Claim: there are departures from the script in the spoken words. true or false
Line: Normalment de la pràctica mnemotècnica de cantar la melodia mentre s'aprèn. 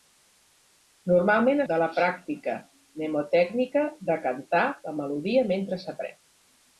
false